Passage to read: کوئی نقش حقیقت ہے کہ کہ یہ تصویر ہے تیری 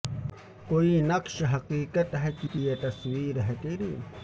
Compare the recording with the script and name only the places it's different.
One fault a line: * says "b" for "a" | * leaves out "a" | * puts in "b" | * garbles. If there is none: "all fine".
all fine